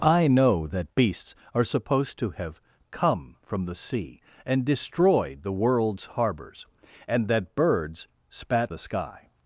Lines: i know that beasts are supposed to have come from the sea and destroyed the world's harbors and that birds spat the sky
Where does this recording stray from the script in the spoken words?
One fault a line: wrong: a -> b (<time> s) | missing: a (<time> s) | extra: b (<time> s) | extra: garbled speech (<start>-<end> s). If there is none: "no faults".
no faults